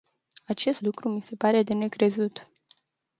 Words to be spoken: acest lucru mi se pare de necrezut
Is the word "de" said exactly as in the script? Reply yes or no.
yes